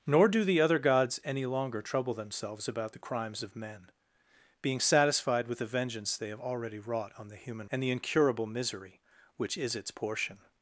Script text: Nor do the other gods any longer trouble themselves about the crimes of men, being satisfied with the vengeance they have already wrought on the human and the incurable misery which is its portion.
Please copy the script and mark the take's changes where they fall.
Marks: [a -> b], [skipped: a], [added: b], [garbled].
Nor do the other gods any longer trouble themselves about the crimes of men, being satisfied with the vengeance they have already wrought on the human and the incurable misery which is its portion.